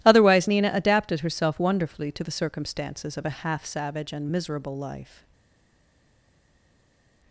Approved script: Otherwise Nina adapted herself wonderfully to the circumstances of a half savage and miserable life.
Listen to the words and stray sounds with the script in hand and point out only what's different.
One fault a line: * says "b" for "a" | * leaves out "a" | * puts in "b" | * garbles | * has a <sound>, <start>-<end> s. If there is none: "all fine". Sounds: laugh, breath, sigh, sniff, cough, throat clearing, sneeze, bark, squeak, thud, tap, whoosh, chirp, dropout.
all fine